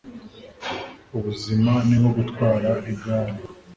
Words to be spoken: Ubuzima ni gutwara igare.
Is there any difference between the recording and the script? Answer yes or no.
yes